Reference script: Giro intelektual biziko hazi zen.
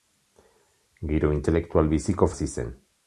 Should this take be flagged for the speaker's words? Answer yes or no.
no